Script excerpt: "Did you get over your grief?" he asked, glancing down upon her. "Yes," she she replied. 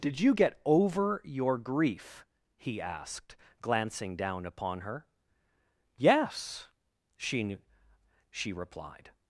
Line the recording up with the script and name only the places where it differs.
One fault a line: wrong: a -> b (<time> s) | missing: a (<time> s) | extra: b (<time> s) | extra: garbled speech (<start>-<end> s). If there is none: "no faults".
no faults